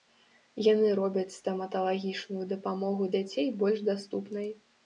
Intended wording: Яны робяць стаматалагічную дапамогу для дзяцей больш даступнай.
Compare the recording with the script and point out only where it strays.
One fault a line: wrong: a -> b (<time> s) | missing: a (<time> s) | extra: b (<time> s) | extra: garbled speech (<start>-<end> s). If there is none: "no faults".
missing: для (3.1 s)